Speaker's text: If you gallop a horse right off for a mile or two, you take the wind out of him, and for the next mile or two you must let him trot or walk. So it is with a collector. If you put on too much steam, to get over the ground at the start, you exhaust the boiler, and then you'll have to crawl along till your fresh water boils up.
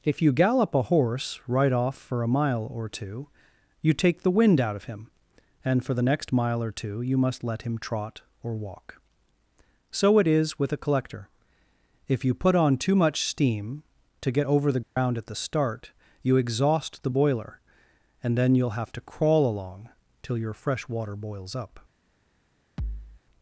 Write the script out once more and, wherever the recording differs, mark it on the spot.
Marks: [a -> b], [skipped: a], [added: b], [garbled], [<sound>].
If you gallop a horse right off for a mile or two, you take the wind out of him, and for the next mile or two you must let him trot or walk. So it is with a collector. If you put on too much steam, to get over the ground [dropout] at the start, you exhaust the boiler, and then you'll have to crawl along till your fresh water boils up. [thud]